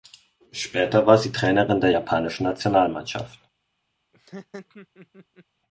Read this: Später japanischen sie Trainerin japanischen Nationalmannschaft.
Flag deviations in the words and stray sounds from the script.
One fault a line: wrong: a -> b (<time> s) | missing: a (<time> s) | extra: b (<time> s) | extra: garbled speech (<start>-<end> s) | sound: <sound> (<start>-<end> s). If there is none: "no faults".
wrong: japanischen -> war (1.1 s)
extra: der (1.8 s)
sound: laugh (4.1-5.5 s)